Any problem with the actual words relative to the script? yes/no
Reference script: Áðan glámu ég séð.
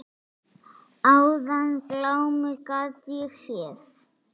yes